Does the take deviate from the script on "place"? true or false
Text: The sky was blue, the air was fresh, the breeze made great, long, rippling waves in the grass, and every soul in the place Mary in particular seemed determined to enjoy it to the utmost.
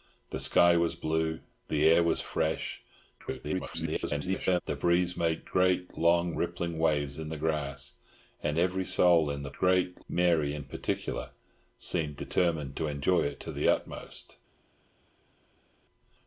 true